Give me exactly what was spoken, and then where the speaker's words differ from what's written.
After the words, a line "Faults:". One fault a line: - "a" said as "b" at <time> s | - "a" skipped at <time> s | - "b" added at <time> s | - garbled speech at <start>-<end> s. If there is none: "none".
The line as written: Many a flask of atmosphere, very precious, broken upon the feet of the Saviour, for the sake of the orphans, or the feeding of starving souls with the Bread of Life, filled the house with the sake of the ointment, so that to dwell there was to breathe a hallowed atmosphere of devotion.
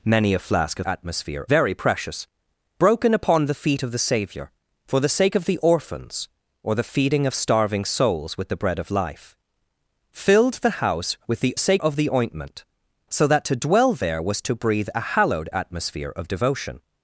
Many a flask of atmosphere, very precious, broken upon the feet of the Saviour, for the sake of the orphans, or the feeding of starving souls with the Bread of Life, filled the house with the sake of the ointment, so that to dwell there was to breathe a hallowed atmosphere of devotion.
Faults:
none